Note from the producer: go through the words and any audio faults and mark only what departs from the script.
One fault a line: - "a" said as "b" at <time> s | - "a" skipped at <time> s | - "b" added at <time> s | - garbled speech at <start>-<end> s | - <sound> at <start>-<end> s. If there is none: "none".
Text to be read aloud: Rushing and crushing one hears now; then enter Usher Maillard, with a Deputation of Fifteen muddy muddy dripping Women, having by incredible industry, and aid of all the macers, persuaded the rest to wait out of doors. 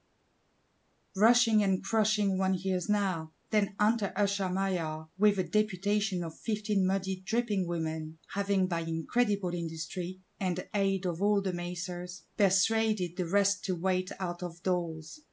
- "muddy" skipped at 7.2 s